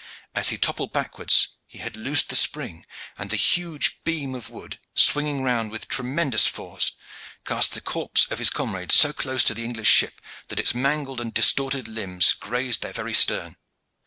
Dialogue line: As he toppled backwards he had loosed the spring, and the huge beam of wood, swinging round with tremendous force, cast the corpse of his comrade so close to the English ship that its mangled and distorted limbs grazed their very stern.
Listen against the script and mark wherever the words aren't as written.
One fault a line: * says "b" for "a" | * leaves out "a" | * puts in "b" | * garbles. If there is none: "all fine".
all fine